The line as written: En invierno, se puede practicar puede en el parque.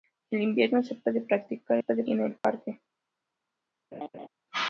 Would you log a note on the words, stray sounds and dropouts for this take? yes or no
yes